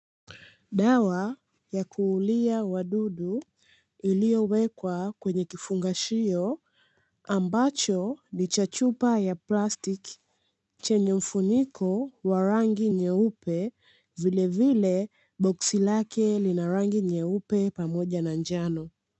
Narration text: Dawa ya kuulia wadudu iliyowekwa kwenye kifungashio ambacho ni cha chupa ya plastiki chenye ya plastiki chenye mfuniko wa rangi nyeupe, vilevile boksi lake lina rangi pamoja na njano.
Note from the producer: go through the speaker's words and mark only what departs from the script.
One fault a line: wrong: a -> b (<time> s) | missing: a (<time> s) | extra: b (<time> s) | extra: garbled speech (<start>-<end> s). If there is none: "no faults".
missing: ya plastiki chenye (11.1 s)
extra: nyeupe (17.0 s)